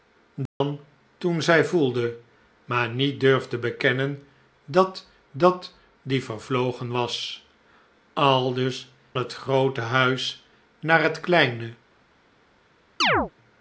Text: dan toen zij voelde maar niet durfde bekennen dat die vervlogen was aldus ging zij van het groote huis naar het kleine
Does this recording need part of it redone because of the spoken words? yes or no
yes